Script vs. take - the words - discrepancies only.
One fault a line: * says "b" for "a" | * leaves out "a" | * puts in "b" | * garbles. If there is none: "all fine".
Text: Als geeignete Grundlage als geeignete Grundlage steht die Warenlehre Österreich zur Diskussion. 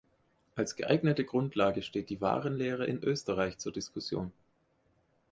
* leaves out "als geeignete Grundlage"
* puts in "in"